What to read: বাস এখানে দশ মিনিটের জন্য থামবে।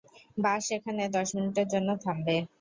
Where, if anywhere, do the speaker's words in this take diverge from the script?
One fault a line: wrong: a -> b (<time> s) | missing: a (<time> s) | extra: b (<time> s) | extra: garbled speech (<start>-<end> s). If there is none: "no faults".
no faults